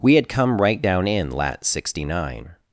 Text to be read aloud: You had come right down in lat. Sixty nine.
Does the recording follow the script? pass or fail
fail